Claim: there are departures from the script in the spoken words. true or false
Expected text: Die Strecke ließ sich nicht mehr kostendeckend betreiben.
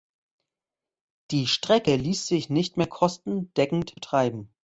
false